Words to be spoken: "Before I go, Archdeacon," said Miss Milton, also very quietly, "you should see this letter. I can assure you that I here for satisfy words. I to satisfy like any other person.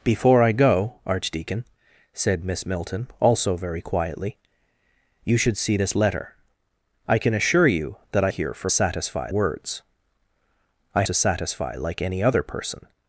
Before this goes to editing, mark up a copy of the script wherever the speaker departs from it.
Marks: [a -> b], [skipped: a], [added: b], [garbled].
"Before I go, Archdeacon," said Miss Milton, also very quietly, "you should see this letter. I can assure you that I here for satisfy words. I to satisfy like any other person.